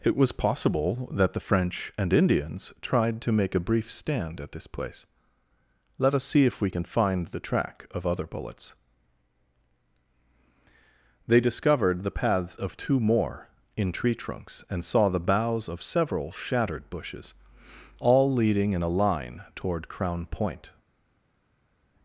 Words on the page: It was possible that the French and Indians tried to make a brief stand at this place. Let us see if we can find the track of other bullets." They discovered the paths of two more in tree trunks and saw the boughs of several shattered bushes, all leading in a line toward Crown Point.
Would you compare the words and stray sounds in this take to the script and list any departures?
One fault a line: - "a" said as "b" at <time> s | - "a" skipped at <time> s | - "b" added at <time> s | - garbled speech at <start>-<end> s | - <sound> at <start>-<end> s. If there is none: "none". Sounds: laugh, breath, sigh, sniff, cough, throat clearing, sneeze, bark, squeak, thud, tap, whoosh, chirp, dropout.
none